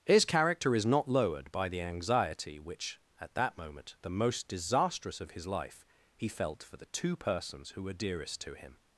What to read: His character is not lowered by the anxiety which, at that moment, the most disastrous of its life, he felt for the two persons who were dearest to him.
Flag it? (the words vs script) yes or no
yes